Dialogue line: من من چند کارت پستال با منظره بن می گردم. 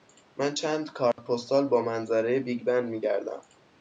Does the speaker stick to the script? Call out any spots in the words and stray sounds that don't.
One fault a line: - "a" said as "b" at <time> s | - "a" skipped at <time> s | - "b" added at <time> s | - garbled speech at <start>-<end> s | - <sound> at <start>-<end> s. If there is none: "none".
- "من" skipped at 0.6 s
- dropout at 1.1-1.2 s
- "بیگ" added at 2.4 s